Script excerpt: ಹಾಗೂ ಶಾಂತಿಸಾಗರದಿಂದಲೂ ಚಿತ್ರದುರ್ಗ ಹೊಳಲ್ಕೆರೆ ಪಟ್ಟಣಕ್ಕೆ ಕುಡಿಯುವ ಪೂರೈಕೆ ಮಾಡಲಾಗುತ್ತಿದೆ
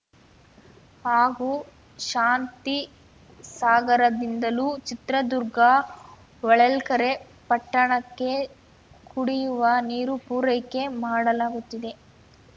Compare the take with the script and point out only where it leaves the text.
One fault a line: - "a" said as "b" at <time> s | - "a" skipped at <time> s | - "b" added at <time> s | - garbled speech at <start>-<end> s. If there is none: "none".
- "ನೀರು" added at 9.9 s